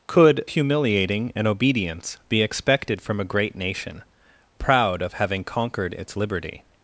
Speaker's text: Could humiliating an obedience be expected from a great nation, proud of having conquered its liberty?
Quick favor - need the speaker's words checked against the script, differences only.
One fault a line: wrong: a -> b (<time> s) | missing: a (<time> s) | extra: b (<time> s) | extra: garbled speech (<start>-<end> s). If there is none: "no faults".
no faults